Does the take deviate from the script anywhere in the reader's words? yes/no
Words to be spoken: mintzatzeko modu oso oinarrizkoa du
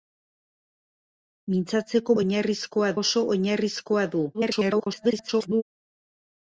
yes